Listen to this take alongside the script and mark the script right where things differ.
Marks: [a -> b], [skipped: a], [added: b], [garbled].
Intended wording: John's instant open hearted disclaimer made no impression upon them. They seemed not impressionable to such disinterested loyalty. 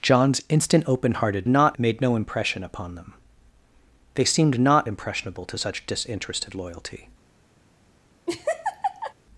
John's instant open hearted [disclaimer -> not] made no impression upon them. They seemed not impressionable to such disinterested loyalty.